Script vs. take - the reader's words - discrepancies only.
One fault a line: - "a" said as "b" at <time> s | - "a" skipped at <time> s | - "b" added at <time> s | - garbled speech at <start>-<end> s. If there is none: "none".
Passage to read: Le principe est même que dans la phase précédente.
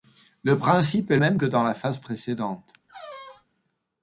none